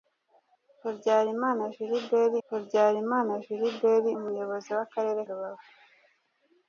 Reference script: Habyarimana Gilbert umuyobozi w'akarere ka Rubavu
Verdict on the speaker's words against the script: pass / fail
fail